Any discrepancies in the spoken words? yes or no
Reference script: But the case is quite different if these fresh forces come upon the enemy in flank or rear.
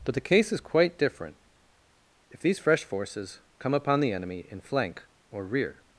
no